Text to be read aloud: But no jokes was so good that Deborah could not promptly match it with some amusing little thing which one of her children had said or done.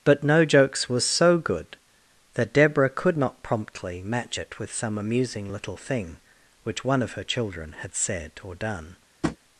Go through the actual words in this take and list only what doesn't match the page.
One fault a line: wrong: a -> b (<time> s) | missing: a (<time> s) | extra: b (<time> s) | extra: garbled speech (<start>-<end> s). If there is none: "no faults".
no faults